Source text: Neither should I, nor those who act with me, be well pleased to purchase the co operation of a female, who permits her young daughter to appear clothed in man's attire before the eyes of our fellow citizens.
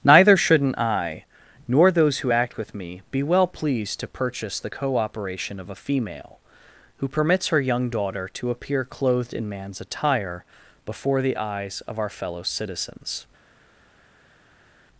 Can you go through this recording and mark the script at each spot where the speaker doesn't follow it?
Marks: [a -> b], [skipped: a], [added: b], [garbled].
Neither [should -> shouldn't] I, nor those who act with me, be well pleased to purchase the co operation of a female, who permits her young daughter to appear clothed in man's attire before the eyes of our fellow citizens.